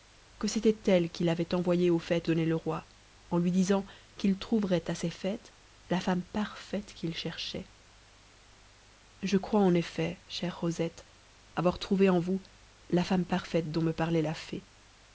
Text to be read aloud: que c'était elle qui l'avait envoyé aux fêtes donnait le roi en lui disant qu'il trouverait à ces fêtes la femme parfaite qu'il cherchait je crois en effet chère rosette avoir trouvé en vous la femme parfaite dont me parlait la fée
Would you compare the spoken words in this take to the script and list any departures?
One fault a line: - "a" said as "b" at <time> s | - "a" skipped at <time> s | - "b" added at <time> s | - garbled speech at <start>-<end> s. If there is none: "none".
none